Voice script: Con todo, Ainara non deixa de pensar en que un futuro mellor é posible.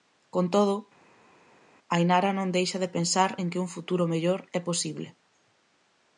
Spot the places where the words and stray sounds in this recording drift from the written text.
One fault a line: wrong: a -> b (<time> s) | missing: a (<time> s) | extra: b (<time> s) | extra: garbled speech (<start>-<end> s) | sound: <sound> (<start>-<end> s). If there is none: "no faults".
no faults